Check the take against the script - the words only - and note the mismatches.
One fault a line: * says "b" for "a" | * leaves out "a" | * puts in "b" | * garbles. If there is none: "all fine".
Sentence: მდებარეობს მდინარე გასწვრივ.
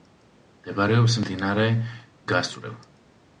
all fine